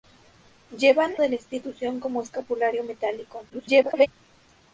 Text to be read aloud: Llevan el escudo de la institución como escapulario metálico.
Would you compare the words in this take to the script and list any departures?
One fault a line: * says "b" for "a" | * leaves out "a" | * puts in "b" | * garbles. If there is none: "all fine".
* leaves out "el escudo"
* garbles